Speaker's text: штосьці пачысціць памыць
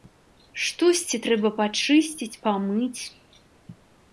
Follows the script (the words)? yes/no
no